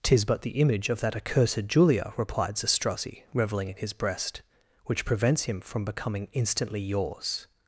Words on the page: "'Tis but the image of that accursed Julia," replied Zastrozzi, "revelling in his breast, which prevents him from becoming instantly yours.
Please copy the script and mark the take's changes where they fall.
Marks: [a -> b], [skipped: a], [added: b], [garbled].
"'Tis but the image of that accursed Julia," replied Zastrozzi, "revelling in his breast, which prevents him from becoming instantly yours.